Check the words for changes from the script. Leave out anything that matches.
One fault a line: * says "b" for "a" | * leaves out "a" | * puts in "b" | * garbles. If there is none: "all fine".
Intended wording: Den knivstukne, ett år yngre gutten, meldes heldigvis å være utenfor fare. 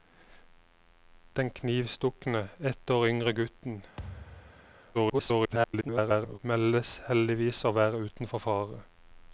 * garbles